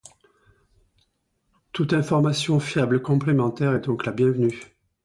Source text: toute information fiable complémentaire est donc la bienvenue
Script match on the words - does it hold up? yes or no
yes